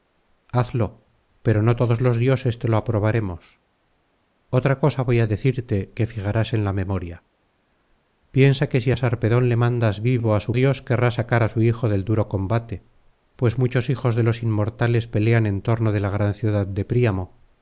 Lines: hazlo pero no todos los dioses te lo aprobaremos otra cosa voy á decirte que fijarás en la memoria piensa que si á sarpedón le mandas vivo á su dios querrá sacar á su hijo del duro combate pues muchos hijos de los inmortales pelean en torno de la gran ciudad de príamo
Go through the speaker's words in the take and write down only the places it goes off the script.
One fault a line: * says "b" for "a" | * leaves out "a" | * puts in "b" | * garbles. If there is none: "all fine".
all fine